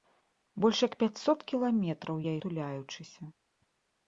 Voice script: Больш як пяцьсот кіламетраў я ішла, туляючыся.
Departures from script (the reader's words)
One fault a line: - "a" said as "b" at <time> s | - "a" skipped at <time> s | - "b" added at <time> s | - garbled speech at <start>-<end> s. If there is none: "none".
- "ішла" skipped at 2.3 s